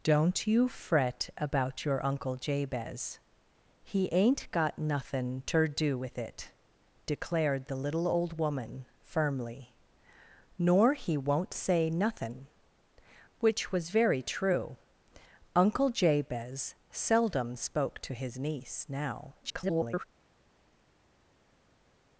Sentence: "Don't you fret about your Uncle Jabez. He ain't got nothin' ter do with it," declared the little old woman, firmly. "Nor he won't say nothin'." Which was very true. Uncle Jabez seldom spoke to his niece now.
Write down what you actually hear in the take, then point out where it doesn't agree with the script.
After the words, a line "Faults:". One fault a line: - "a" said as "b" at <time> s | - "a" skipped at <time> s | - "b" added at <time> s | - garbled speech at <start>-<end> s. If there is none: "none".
"Don't you fret about your Uncle Jabez. He ain't got nothin' ter do with it," declared the little old woman, firmly. "Nor he won't say nothin'." Which was very true. Uncle Jabez seldom spoke to his niece now. [garbled]
Faults:
- garbled speech at 19.4-20.0 s